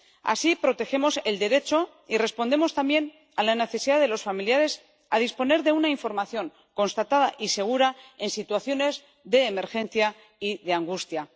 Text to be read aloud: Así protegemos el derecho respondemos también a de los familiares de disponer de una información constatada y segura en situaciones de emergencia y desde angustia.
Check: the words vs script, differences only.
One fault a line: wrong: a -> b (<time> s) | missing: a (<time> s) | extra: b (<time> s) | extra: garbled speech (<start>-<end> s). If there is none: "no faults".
extra: y (2.1 s)
extra: la necesidad (3.4 s)
wrong: desde -> de (10.6 s)